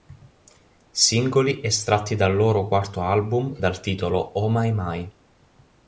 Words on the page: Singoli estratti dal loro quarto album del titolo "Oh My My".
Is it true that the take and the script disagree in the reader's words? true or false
true